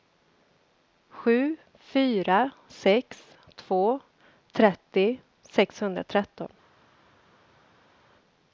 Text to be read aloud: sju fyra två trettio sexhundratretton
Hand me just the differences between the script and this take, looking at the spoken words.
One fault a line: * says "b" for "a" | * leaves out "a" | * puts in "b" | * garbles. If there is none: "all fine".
* puts in "sex"